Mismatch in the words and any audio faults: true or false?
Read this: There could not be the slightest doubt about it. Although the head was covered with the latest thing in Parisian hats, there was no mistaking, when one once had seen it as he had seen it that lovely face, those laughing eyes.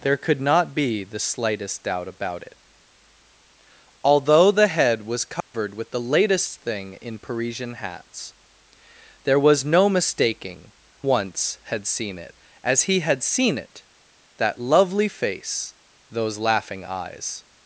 true